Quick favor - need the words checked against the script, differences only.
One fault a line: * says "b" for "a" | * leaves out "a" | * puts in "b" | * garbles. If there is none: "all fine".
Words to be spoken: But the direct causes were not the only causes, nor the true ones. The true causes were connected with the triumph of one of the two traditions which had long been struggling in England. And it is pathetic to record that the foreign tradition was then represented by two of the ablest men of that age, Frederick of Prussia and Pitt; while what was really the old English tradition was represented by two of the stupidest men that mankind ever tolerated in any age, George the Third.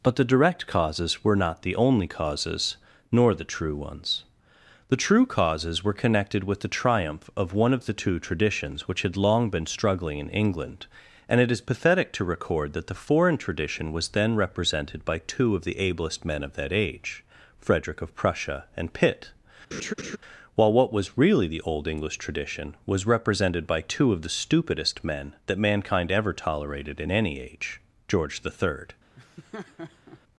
all fine